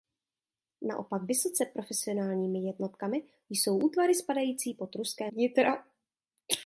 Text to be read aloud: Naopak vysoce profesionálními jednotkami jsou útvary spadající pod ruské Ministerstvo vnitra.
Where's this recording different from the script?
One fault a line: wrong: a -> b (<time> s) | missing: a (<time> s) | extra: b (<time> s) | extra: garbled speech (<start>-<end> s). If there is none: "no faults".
missing: Ministerstvo (5.3 s)